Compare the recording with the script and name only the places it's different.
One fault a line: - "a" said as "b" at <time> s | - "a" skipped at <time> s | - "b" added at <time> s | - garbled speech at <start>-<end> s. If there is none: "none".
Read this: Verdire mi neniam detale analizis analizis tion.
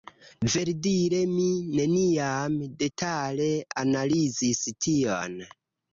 - "analizis" skipped at 4.6 s